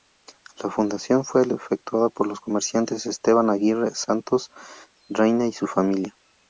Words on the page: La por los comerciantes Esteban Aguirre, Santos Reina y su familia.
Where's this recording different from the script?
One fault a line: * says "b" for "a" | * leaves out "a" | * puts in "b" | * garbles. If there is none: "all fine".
* puts in "fundación fue efectuada"